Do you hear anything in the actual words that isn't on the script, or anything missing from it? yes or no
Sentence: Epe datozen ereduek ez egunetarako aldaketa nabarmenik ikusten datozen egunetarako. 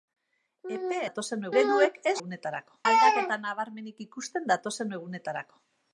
no